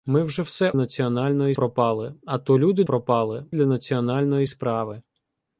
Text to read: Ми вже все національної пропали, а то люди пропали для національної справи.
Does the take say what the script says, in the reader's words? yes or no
yes